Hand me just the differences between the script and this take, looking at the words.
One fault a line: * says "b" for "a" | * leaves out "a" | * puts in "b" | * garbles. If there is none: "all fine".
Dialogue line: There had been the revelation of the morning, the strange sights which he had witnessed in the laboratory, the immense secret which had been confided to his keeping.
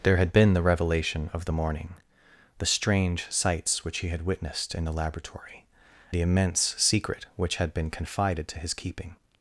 all fine